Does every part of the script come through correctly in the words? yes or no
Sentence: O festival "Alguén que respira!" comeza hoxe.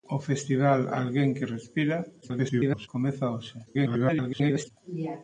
no